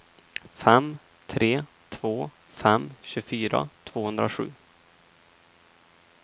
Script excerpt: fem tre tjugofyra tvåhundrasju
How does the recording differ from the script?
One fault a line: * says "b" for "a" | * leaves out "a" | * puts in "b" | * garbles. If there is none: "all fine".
* puts in "två fem"